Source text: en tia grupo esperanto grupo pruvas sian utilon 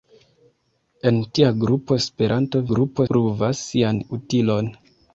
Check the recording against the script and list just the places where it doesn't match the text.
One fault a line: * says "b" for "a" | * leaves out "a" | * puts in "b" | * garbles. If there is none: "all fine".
all fine